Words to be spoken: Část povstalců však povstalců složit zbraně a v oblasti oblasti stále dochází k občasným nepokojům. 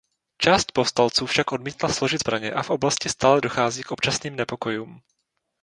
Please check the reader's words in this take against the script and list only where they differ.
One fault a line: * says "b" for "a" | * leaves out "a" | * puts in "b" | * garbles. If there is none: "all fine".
* says "odmítla" for "povstalců"
* leaves out "oblasti"